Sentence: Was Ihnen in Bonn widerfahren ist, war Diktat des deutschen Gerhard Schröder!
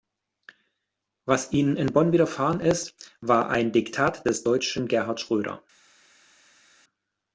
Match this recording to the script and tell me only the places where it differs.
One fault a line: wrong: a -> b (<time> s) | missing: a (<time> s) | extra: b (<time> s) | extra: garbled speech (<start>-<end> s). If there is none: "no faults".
extra: ein (3.5 s)